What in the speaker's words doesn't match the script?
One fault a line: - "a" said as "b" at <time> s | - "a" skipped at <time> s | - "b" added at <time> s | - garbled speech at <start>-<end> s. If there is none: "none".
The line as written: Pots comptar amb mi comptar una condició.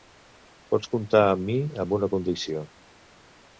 - "comptar" said as "amb" at 1.8 s